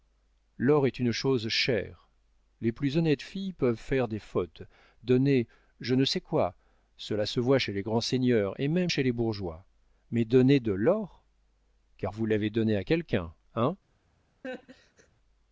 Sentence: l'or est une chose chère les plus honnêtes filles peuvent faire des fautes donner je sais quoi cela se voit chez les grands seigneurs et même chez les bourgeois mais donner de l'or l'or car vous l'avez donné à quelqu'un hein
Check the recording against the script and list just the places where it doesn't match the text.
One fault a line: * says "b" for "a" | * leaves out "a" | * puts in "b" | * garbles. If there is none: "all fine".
* puts in "ne"
* leaves out "l'or"